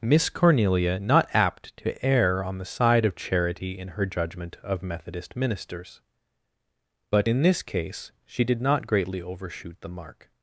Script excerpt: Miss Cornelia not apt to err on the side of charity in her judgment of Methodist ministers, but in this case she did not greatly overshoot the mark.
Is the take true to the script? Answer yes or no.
yes